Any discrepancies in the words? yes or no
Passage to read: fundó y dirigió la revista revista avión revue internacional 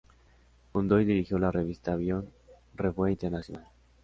yes